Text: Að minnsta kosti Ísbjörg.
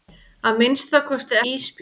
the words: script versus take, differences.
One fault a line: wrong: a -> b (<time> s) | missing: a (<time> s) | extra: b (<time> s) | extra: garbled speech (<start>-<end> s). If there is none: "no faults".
no faults